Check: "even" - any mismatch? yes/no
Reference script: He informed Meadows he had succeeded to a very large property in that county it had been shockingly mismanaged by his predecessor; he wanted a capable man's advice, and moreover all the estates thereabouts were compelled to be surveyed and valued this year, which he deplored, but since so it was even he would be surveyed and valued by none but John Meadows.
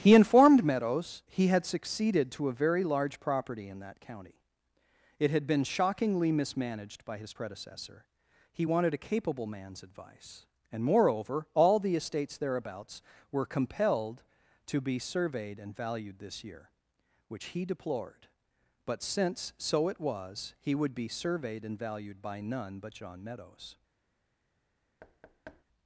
yes